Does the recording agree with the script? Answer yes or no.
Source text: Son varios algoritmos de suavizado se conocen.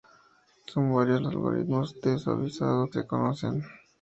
yes